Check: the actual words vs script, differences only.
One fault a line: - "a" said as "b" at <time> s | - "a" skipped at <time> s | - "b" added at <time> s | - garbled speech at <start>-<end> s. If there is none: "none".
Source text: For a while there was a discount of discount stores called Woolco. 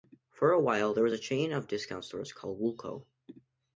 - "discount" said as "chain" at 1.2 s